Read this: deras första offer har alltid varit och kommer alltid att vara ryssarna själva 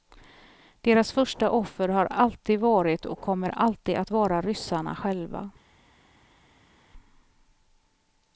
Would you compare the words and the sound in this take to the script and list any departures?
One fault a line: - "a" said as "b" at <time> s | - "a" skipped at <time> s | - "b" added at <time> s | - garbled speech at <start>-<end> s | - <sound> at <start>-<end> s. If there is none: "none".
none